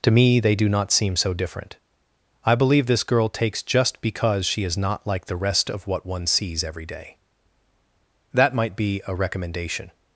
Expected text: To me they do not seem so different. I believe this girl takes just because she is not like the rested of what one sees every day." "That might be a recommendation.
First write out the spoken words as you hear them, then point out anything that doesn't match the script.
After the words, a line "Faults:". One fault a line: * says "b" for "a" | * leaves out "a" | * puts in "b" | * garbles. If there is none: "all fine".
To me they do not seem so different. I believe this girl takes just because she is not like the rest of what one sees every day." "That might be a recommendation.
Faults:
* says "rest" for "rested"